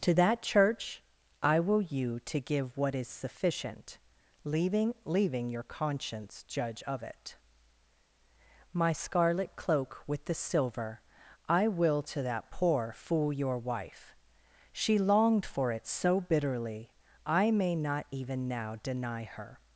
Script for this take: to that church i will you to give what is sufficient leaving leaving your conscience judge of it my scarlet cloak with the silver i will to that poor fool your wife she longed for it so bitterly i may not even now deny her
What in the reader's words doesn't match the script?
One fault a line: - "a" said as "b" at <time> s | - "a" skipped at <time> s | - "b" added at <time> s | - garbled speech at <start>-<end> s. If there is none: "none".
none